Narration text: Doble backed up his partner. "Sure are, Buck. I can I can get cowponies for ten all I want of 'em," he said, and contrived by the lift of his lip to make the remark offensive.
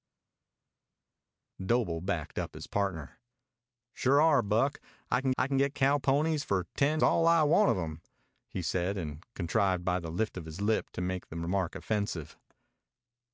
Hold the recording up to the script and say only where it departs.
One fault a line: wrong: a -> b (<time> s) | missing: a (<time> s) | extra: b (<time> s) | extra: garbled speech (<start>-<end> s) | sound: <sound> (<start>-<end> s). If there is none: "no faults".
no faults